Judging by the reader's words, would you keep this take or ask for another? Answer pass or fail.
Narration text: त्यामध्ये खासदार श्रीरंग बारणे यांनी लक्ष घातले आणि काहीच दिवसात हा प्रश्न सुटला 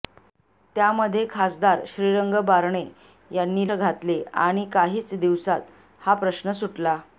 fail